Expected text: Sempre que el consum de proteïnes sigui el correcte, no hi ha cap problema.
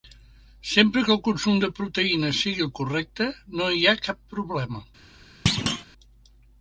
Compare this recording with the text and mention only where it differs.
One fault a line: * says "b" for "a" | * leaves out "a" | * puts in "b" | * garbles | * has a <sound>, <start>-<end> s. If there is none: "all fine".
* has a thud, 5.5-5.9 s